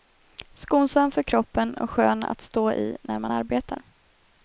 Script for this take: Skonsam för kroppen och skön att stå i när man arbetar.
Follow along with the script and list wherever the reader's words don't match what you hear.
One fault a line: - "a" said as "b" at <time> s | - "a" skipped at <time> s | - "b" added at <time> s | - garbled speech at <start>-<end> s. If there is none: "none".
none